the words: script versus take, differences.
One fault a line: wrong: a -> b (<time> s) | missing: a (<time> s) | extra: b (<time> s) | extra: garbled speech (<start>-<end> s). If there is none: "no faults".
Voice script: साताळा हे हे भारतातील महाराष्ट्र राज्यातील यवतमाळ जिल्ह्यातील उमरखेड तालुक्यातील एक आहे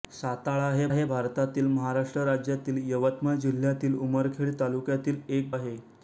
no faults